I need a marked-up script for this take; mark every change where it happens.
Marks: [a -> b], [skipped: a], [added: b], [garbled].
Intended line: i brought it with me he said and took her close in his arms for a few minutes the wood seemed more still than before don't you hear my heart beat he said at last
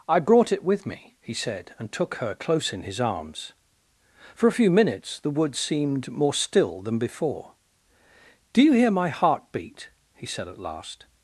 i brought it with me he said and took her close in his arms for a few minutes the wood seemed more still than before [don't -> do] you hear my heart beat he said at last